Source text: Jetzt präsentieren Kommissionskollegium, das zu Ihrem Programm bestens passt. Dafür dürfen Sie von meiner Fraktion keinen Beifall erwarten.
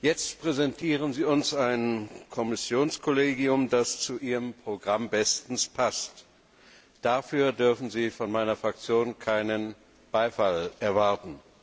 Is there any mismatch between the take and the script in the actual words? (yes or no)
yes